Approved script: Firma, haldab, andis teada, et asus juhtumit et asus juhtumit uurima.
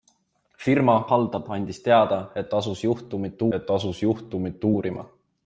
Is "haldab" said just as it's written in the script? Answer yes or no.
yes